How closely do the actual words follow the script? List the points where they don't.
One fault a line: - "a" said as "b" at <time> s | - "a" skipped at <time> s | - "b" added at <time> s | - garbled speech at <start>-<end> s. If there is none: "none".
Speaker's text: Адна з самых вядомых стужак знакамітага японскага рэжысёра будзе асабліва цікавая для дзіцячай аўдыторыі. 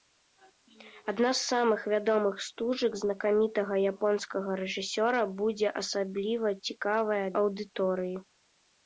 - "для дзіцячай" skipped at 7.2 s